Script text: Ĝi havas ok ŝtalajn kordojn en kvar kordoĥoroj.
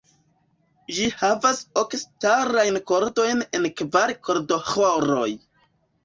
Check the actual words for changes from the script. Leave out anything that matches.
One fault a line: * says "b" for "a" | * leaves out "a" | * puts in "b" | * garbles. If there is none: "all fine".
all fine